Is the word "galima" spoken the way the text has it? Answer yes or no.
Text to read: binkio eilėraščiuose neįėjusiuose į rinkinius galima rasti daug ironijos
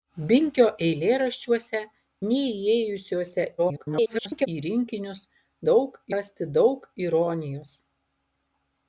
no